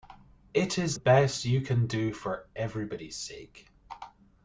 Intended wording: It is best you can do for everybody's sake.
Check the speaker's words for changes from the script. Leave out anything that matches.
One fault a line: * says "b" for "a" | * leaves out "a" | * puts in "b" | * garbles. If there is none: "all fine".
all fine